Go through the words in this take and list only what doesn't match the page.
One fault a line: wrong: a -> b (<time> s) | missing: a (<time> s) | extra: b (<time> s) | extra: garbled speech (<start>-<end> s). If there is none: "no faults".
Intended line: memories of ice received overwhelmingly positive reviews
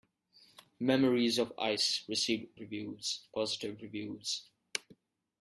wrong: overwhelmingly -> reviews (2.6 s)